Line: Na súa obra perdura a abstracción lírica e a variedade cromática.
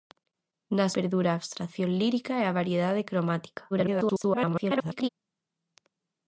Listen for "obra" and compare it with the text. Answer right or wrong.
wrong